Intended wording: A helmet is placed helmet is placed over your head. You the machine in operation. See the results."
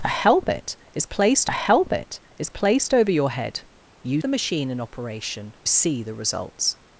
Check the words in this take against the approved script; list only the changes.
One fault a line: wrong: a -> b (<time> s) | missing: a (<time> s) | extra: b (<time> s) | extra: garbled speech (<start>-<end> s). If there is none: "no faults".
no faults